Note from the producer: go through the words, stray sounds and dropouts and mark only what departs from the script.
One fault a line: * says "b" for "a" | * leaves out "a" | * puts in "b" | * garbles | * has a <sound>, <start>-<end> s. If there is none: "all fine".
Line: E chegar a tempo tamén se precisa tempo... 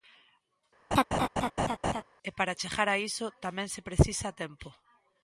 * has a laugh, 0.9-2.0 s
* puts in "para"
* says "iso" for "tempo"